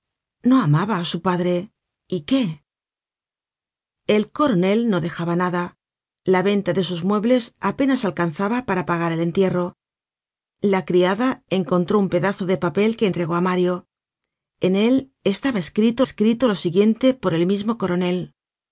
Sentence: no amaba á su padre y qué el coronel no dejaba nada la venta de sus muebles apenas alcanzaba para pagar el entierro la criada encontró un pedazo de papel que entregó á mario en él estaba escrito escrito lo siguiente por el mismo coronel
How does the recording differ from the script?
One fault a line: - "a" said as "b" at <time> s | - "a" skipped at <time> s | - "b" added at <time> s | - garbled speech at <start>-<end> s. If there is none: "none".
none